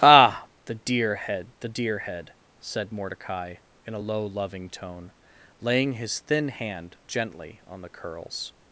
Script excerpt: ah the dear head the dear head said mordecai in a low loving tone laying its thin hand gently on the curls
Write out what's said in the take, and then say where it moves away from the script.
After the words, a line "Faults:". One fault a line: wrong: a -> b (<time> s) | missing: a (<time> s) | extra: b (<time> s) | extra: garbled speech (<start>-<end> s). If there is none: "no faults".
ah the dear head the dear head said mordecai in a low loving tone laying his thin hand gently on the curls
Faults:
wrong: its -> his (5.9 s)